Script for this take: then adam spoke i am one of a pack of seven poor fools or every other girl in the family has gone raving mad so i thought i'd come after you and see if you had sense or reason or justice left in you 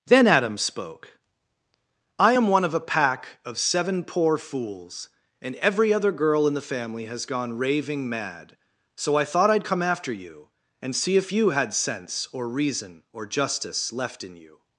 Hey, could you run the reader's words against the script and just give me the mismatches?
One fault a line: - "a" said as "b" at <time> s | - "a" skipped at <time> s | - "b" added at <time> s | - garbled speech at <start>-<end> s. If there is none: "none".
- "or" said as "and" at 5.4 s